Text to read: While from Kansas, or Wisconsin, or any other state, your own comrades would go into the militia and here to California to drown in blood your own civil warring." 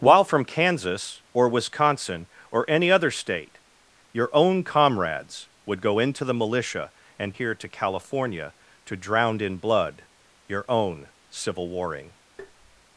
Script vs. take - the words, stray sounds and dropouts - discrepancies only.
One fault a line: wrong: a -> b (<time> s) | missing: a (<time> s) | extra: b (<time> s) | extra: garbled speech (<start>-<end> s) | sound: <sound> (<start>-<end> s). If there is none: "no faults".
sound: tap (12.4-12.8 s)